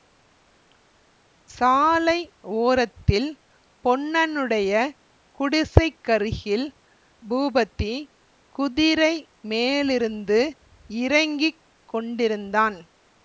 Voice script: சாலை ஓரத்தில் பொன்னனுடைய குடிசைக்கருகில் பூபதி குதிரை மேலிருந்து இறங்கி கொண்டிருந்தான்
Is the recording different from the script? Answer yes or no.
no